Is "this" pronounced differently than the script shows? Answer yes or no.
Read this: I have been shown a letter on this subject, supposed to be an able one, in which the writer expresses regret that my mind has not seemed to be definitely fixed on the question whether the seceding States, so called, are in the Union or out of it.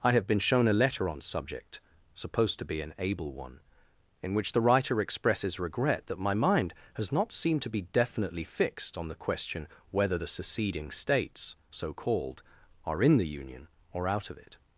yes